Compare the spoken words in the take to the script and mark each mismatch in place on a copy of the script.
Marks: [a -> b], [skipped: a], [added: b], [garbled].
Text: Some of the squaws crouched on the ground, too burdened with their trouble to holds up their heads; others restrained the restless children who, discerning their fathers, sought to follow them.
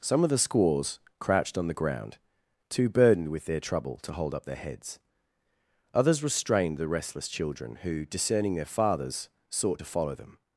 Some of the squaws crouched on the ground, too burdened with their trouble to [holds -> hold] up their heads; others restrained the restless children who, discerning their fathers, sought to follow them.